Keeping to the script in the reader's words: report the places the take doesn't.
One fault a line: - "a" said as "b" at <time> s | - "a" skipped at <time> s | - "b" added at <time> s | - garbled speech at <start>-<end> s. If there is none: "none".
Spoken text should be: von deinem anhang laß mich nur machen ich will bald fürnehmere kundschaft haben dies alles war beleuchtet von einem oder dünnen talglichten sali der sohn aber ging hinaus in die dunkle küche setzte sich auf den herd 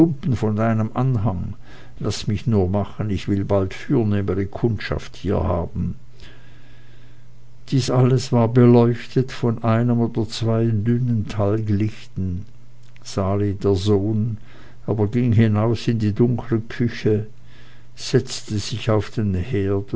- "hier" added at 5.2 s
- "zwei" added at 10.3 s